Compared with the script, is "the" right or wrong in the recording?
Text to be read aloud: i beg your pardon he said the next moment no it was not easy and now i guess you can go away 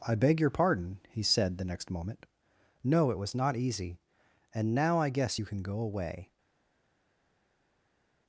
right